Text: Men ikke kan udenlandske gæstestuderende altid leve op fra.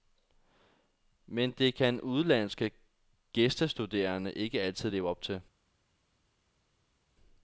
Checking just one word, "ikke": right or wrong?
wrong